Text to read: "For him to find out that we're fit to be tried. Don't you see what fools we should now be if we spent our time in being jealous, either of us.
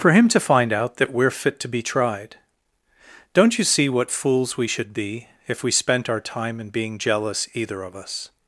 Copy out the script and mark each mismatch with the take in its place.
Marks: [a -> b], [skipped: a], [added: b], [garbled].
"For him to find out that we're fit to be tried. Don't you see what fools we should [skipped: now] be if we spent our time in being jealous, either of us.